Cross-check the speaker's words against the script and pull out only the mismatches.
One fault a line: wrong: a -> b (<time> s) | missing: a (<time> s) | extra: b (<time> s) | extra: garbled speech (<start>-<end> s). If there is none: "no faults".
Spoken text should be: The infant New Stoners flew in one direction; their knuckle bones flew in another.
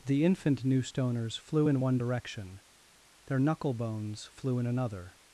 no faults